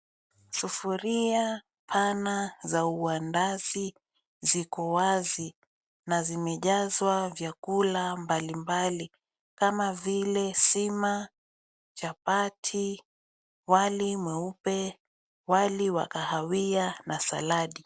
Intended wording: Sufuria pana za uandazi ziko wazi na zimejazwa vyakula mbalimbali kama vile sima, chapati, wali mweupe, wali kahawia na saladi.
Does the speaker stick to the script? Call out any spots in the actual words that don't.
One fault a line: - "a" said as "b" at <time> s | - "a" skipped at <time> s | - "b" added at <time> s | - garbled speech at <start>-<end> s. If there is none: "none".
- "wa" added at 15.9 s